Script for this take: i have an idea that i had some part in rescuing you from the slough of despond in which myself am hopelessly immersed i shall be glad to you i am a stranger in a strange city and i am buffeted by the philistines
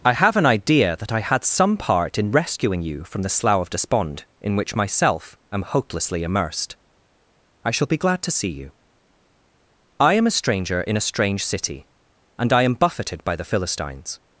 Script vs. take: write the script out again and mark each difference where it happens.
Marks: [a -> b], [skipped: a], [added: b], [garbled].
i have an idea that i had some part in rescuing you from the slough of despond in which myself am hopelessly immersed i shall be glad to [added: see] you i am a stranger in a strange city and i am buffeted by the philistines